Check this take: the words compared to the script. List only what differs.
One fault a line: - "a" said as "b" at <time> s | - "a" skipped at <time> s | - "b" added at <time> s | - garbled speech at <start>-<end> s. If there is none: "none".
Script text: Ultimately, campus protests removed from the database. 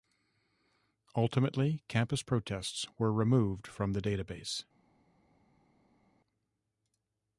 - "were" added at 3.0 s